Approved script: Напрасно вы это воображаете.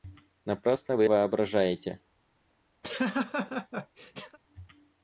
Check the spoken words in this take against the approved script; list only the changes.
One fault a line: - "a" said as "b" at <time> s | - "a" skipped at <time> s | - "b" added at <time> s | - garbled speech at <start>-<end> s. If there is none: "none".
- "это" skipped at 1.0 s